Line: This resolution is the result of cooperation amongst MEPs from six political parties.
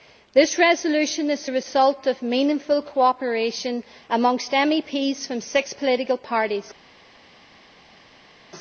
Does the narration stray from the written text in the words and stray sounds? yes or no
yes